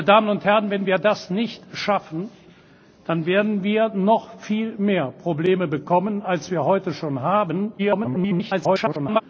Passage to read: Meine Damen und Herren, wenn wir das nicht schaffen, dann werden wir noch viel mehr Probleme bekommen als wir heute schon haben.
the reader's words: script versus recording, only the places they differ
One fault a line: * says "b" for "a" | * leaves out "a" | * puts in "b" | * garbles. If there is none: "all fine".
* garbles